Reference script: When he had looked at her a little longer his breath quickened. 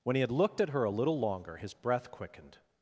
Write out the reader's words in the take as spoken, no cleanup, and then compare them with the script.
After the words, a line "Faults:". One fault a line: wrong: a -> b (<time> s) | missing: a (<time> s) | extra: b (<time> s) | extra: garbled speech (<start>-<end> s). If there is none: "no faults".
When he had looked at her a little longer his breath quickened.
Faults:
no faults